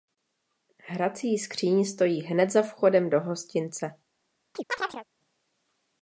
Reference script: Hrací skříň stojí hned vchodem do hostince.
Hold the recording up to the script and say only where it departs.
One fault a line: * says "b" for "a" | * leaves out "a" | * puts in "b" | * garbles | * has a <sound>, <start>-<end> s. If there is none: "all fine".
* puts in "za"
* has a chirp, 4.5-5.1 s